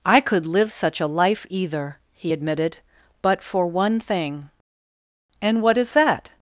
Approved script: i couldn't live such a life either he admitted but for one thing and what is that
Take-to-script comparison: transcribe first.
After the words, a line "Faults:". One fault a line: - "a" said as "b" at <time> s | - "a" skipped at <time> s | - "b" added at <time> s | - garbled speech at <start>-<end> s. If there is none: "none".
i could live such a life either he admitted but for one thing and what is that
Faults:
- "couldn't" said as "could" at 0.2 s